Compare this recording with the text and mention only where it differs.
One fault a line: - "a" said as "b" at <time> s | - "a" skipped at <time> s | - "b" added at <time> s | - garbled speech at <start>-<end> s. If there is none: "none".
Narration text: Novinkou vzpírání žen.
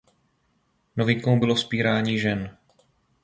- "bylo" added at 1.4 s